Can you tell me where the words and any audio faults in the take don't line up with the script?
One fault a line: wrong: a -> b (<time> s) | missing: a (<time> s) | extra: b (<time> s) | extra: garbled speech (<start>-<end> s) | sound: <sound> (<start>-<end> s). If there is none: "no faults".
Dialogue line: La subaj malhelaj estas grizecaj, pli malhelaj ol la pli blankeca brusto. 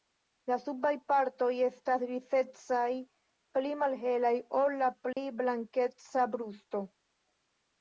wrong: malhelaj -> partoj (1.1 s)
sound: dropout (5.1-5.2 s)